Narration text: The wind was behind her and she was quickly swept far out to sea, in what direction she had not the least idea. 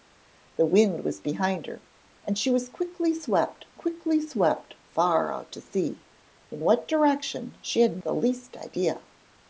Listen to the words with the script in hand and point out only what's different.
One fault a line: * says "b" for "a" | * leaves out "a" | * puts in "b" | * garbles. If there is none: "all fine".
* puts in "quickly swept"
* leaves out "not"